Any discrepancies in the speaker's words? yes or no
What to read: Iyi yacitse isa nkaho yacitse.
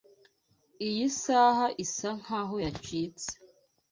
yes